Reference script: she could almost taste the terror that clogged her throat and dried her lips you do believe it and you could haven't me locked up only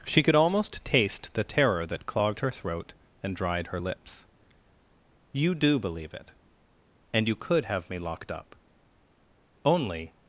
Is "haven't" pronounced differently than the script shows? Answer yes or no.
yes